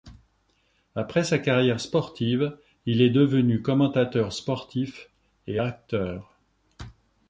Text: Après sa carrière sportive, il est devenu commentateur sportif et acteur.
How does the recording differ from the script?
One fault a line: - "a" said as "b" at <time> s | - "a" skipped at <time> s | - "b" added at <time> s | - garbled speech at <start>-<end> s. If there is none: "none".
none